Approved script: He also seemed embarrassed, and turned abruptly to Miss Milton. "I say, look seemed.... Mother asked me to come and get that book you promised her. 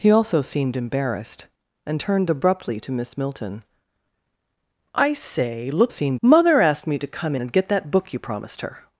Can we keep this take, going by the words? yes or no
yes